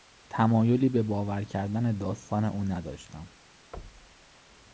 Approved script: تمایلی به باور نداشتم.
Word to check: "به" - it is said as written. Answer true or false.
true